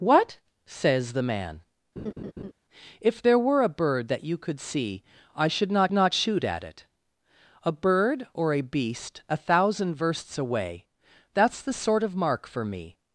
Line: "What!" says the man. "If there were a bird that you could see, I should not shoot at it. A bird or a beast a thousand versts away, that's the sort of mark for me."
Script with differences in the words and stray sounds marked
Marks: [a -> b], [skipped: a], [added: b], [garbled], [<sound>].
"What!" says the man. [laugh] "If there were a bird that you could see, I should not [added: not] shoot at it. A bird or a beast a thousand versts away, that's the sort of mark for me."